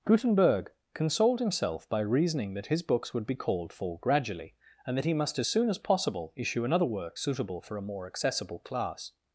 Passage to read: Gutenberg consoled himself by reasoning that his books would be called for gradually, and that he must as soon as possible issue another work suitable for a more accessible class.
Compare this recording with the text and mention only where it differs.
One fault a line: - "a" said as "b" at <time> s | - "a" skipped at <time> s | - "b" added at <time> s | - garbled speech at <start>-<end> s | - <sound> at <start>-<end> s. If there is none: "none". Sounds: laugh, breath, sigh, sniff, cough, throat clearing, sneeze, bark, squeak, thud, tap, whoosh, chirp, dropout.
none